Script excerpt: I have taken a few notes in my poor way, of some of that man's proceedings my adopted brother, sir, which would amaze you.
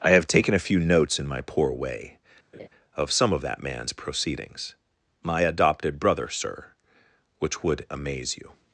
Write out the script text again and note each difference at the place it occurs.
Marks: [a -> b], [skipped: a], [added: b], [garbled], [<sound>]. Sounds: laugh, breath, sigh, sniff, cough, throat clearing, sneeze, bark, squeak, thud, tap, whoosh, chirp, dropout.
I have taken a few notes in my poor way, [laugh] of some of that man's proceedings my adopted brother, sir, which would amaze you.